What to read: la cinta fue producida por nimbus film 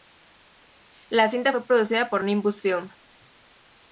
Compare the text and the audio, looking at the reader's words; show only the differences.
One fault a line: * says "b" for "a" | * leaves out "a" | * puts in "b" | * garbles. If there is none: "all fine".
all fine